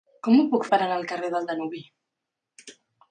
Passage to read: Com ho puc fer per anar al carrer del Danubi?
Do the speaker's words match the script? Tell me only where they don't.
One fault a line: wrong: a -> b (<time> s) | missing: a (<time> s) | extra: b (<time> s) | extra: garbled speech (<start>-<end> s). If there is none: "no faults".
missing: fer (0.6 s)